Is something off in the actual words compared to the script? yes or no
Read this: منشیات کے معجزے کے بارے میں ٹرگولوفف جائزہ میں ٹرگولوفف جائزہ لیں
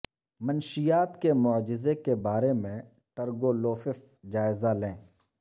yes